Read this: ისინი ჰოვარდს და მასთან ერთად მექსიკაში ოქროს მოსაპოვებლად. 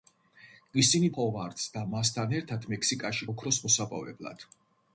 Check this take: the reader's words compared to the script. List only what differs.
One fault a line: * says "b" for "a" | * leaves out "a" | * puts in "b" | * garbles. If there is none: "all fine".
all fine